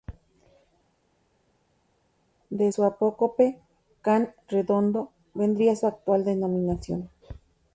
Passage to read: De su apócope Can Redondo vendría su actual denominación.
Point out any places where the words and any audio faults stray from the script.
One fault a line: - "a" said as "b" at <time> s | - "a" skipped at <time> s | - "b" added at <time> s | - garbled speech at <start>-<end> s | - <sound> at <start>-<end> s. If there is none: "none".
none